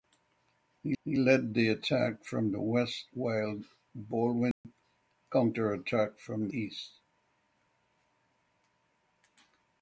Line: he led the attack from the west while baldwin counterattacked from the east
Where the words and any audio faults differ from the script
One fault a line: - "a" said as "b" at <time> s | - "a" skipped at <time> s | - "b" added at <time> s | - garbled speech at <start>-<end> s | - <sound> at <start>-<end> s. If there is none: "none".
- "he" added at 1.0 s
- dropout at 4.5-4.6 s
- "the" skipped at 6.5 s